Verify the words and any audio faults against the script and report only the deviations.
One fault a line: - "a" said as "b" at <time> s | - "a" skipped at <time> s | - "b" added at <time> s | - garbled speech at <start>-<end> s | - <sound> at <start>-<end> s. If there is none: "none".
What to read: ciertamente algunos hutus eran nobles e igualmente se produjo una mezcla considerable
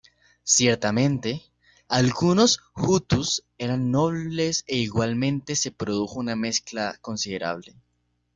none